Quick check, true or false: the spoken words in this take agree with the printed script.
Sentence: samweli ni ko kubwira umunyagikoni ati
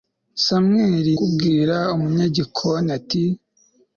false